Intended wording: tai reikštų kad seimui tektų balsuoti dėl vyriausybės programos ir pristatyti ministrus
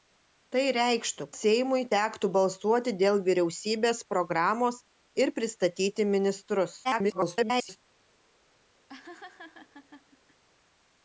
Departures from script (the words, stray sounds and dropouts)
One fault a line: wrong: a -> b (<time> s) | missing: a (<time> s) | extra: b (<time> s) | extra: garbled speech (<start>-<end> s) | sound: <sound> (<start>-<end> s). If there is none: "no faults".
missing: kad (1.2 s)
extra: garbled speech (6.8-7.8 s)
sound: laugh (8.9-10.4 s)